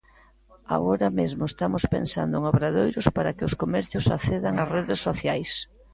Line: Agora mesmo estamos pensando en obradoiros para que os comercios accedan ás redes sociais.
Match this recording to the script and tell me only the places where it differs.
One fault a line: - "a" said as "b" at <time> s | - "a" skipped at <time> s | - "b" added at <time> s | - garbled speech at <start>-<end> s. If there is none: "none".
none